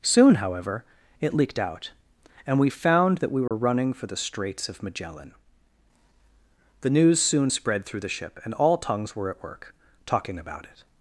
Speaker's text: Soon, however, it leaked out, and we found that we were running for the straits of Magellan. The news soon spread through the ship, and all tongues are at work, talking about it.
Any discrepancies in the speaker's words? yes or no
yes